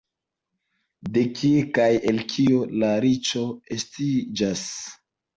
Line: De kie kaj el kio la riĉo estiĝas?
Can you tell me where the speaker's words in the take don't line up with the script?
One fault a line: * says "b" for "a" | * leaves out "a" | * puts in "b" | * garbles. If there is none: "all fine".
all fine